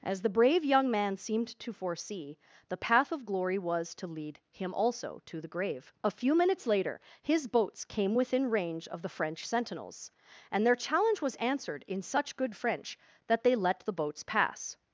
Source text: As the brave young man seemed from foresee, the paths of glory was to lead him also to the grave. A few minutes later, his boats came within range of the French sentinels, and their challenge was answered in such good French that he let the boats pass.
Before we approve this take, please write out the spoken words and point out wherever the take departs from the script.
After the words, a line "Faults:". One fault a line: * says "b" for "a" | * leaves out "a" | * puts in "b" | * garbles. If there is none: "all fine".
As the brave young man seemed to foresee, the path of glory was to lead him also to the grave. A few minutes later, his boats came within range of the French sentinels, and their challenge was answered in such good French that they let the boats pass.
Faults:
* says "to" for "from"
* says "path" for "paths"
* says "they" for "he"